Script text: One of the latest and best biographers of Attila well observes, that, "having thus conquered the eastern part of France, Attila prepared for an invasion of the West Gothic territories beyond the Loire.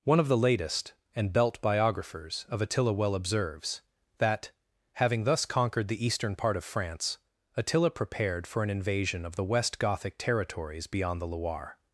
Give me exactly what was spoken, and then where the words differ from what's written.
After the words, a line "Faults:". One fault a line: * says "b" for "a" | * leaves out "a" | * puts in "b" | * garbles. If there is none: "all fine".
One of the latest and belt biographers of Attila well observes, that, "having thus conquered the eastern part of France, Attila prepared for an invasion of the West Gothic territories beyond the Loire.
Faults:
* says "belt" for "best"